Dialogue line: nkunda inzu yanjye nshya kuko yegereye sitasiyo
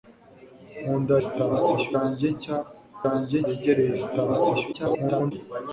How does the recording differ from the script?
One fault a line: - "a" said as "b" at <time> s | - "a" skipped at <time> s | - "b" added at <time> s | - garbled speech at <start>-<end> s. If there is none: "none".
- "inzu" said as "sitasiyo" at 1.2 s
- "kuko" said as "yanjye" at 3.1 s
- garbled speech at 4.7-5.3 s